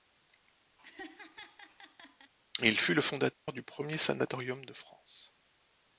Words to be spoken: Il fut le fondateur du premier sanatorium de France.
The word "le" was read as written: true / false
true